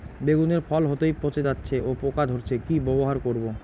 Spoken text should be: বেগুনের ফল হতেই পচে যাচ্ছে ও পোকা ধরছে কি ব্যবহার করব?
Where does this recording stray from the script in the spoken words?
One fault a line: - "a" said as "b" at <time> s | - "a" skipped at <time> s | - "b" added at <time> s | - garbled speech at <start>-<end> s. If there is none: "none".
none